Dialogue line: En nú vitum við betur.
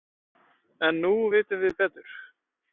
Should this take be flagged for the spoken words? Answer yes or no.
no